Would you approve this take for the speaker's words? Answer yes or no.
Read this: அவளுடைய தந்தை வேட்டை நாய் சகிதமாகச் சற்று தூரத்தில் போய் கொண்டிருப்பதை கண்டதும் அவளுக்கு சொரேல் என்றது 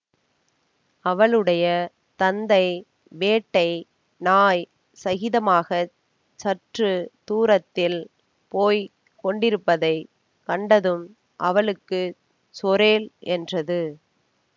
yes